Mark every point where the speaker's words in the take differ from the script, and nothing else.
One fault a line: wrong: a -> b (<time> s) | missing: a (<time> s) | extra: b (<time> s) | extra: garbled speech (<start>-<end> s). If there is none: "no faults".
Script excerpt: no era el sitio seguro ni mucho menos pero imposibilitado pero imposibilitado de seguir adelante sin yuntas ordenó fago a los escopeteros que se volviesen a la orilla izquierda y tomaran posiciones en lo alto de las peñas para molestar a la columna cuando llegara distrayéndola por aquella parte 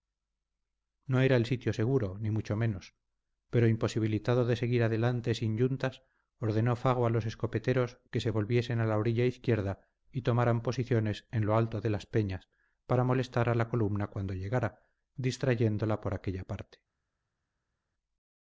missing: pero imposibilitado (4.5 s)